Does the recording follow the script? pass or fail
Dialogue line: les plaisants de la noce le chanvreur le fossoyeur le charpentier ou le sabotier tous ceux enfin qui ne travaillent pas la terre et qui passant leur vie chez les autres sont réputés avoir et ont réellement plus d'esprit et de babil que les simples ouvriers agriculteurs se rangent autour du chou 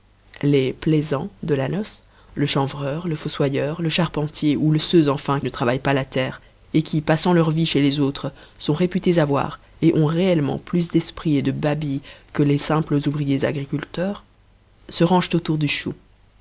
fail